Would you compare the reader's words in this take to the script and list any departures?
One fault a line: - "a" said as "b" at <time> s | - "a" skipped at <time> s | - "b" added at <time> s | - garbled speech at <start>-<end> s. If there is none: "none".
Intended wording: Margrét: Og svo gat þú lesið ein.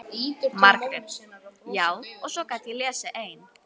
- "Já" added at 1.8 s
- "þú" said as "ég" at 2.7 s